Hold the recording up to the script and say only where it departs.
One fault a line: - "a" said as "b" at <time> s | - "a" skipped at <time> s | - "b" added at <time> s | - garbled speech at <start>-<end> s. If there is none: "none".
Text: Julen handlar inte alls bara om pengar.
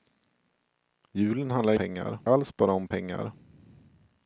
- "inte" said as "pengar" at 1.7 s